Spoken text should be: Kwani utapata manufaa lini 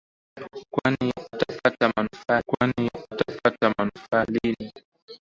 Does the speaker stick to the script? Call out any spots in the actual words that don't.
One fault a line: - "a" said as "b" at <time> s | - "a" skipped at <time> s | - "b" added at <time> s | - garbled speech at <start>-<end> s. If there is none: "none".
- "kwani utapata manufaa" added at 2.5 s